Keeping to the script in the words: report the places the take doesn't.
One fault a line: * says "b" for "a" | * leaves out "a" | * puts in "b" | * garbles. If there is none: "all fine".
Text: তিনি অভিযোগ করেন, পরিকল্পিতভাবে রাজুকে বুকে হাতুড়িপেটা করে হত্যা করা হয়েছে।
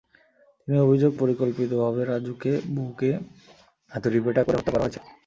* leaves out "করেন"